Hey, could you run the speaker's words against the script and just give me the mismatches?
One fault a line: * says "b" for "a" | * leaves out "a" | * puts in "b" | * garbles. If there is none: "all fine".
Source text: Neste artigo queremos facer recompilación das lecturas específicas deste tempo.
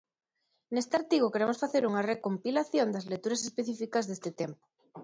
* puts in "unha"